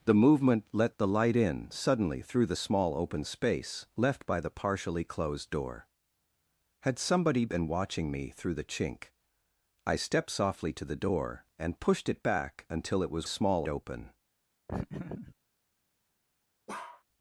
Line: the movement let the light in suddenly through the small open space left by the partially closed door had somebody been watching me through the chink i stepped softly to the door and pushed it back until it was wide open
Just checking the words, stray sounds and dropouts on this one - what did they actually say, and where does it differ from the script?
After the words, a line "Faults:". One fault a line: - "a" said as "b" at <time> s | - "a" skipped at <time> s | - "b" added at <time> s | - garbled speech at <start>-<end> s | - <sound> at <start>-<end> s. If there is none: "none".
the movement let the light in suddenly through the small open space left by the partially closed door had somebody been watching me through the chink i stepped softly to the door and pushed it back until it was small open
Faults:
- "wide" said as "small" at 13.2 s
- laugh at 14.7-15.3 s
- bark at 16.7-17.0 s